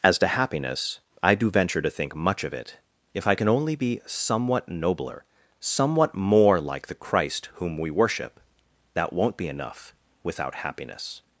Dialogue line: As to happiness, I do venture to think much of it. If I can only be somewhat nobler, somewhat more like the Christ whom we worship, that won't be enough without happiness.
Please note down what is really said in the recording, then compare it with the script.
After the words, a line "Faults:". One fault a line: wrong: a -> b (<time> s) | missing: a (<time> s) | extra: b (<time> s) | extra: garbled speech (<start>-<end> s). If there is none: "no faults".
As to happiness, I do venture to think much of it. If I can only be somewhat nobler, somewhat more like the Christ whom we worship, that won't be enough without happiness.
Faults:
no faults